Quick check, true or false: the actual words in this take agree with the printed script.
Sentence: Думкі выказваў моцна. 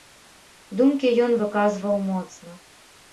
false